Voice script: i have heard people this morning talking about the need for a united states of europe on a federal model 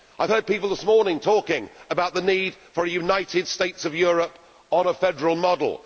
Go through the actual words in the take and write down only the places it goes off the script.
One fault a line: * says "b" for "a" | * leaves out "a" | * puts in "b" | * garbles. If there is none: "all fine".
all fine